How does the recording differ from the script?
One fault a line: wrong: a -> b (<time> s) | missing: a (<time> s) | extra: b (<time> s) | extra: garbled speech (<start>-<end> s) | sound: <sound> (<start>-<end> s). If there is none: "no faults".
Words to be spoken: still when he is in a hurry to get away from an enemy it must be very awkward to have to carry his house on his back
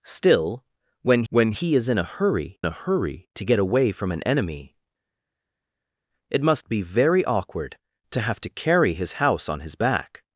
extra: when (1.3 s)
extra: a hurry (2.6 s)